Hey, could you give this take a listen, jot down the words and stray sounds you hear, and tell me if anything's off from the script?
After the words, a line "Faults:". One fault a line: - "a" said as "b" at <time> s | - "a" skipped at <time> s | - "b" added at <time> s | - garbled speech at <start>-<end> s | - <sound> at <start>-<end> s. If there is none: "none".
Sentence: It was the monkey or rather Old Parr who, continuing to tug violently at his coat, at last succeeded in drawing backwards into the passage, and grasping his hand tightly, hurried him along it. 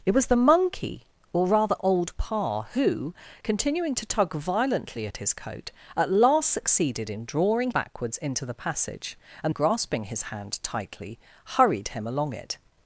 It was the monkey or rather Old Parr who, continuing to tug violently at his coat, at last succeeded in drawing backwards into the passage, and grasping his hand tightly, hurried him along it.
Faults:
none